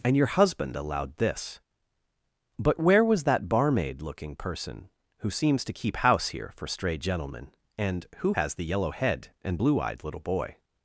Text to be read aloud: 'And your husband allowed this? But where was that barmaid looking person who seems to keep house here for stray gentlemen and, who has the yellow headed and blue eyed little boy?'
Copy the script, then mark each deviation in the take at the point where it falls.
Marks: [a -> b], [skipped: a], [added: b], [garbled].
'And your husband allowed this? But where was that barmaid looking person who seems to keep house here for stray gentlemen and, who has the yellow [headed -> head] and blue eyed little boy?'